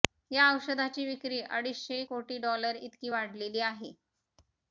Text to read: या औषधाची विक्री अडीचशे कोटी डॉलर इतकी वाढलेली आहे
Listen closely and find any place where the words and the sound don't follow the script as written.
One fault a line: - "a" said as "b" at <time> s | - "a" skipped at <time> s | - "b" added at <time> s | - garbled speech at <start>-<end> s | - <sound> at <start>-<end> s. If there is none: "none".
none